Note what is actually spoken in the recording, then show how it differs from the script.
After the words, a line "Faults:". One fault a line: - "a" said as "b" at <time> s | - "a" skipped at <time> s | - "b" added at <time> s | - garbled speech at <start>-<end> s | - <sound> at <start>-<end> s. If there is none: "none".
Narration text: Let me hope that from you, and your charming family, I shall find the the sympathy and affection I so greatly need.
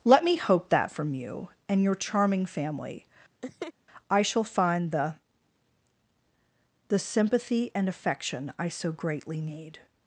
Let me hope that from you, and your charming family, I shall find the the sympathy and affection I so greatly need.
Faults:
- laugh at 3.4-3.7 s